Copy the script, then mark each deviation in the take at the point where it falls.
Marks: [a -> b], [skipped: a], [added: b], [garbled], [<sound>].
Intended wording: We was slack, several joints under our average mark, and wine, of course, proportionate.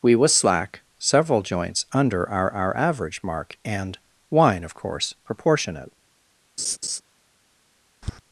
We was slack, several joints under our [added: our] average mark, and wine, of course, proportionate. [laugh] [tap]